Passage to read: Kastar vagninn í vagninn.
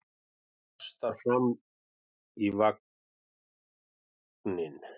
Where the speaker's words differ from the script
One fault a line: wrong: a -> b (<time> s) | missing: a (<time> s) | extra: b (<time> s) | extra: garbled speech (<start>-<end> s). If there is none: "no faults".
wrong: vagninn -> fram (1.2 s)